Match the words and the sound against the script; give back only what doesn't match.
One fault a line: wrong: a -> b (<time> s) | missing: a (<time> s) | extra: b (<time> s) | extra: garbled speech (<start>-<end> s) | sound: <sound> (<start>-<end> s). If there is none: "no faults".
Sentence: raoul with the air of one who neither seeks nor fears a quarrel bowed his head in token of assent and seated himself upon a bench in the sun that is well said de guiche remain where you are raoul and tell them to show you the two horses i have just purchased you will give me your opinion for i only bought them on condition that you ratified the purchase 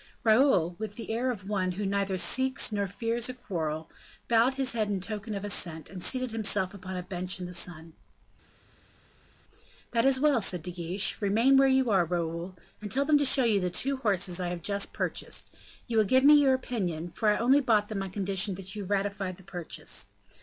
no faults